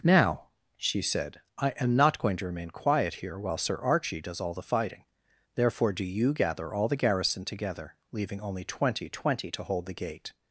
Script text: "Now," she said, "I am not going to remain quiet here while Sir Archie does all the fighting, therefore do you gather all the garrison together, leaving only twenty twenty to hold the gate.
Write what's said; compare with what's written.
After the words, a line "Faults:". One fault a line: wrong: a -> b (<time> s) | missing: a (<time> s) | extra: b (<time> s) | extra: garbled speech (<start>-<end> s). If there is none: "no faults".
"Now," she said, "I am not going to remain quiet here while Sir Archie does all the fighting, therefore do you gather all the garrison together, leaving only twenty twenty to hold the gate.
Faults:
no faults